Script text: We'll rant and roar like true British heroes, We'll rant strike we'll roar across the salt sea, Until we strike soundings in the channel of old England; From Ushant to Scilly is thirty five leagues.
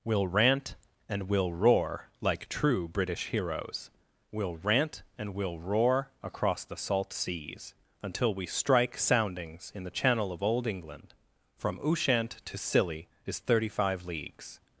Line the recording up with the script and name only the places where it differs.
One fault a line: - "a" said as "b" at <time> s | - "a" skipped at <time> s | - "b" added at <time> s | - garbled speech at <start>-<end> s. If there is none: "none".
- "we'll" added at 1.3 s
- "strike" said as "and" at 5.2 s
- "sea" said as "seas" at 7.1 s